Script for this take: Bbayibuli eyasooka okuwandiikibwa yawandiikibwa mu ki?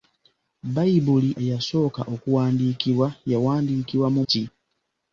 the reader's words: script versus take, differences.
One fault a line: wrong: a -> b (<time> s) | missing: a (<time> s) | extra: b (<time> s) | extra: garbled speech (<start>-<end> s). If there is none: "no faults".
no faults